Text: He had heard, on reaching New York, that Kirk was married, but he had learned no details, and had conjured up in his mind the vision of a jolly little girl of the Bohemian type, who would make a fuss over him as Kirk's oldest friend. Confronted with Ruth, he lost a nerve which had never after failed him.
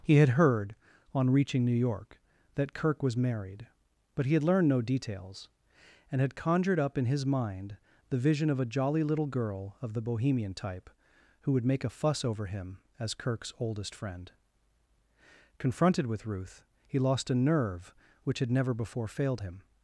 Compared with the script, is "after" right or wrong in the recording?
wrong